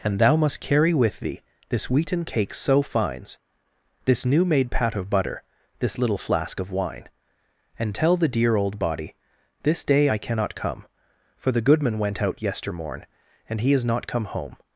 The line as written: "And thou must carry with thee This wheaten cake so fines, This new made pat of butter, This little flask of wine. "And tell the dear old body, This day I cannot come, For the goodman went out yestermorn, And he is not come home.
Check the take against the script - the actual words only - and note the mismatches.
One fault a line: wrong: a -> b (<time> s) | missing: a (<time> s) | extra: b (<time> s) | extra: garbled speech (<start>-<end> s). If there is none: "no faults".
no faults